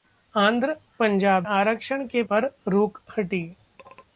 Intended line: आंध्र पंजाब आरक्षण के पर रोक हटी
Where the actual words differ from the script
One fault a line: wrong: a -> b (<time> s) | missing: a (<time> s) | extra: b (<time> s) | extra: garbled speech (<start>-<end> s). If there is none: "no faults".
no faults